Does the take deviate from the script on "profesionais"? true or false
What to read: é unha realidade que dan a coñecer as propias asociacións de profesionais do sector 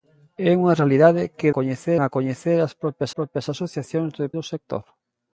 true